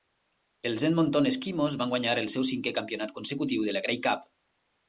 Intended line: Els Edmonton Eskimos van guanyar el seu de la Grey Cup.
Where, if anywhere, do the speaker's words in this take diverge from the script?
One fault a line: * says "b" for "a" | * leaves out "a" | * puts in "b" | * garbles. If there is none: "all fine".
* puts in "cinquè campionat consecutiu"